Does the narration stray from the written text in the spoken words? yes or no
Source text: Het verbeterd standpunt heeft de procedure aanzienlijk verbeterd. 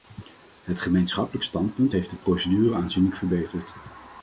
yes